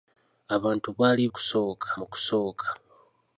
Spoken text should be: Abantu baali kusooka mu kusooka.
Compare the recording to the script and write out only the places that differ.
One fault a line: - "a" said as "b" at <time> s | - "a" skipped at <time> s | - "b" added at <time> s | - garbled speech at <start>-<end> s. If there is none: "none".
none